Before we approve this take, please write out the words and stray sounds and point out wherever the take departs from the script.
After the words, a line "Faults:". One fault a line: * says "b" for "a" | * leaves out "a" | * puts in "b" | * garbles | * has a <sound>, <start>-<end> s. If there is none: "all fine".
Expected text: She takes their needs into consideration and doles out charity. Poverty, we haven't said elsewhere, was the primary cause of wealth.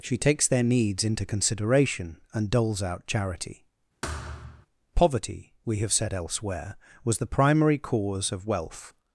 She takes their needs into consideration and doles out charity. Poverty, we have said elsewhere, was the primary cause of wealth.
Faults:
* has a thud, 4.0-4.7 s
* says "have" for "haven't"